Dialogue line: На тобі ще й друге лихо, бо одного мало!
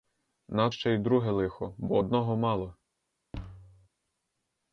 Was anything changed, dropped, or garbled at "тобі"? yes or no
yes